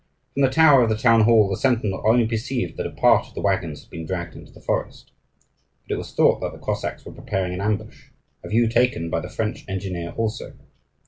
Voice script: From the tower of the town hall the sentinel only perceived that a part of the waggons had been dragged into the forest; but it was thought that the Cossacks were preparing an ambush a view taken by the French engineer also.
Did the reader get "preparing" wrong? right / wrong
right